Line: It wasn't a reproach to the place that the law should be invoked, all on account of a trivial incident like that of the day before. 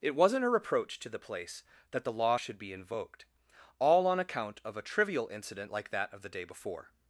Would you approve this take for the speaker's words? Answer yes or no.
yes